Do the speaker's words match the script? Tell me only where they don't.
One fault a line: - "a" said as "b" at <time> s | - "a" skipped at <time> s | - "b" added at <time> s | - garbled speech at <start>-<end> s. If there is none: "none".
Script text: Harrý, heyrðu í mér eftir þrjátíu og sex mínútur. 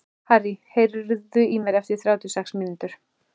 none